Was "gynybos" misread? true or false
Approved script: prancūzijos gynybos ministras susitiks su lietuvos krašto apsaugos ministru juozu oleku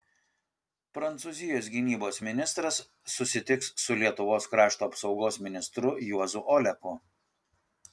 false